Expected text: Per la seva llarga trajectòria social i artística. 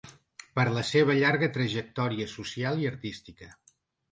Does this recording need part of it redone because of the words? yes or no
no